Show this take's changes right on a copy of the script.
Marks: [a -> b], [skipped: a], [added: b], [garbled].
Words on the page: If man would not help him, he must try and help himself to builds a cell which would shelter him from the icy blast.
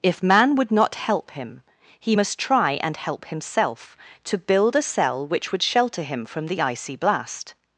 If man would not help him, he must try and help himself to [builds -> build] a cell which would shelter him from the icy blast.